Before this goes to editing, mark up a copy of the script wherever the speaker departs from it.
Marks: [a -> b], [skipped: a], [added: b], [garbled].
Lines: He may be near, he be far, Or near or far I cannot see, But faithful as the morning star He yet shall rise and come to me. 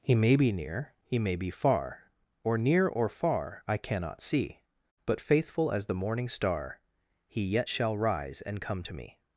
He may be near, he [added: may] be far, Or near or far I cannot see, But faithful as the morning star He yet shall rise and come to me.